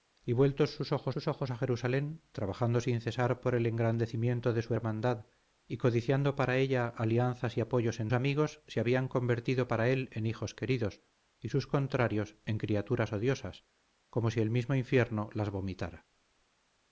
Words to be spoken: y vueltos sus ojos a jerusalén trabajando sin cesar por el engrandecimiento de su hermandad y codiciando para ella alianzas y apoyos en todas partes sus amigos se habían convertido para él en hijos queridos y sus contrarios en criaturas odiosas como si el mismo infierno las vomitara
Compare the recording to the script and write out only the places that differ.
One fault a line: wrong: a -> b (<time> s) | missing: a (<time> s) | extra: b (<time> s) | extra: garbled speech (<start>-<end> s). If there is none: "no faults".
extra: sus ojos (1.1 s)
missing: todas partes sus (8.1 s)